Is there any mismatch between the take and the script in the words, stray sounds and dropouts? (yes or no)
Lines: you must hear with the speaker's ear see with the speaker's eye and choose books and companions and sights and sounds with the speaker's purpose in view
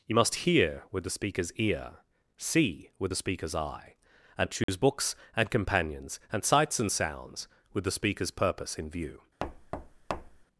yes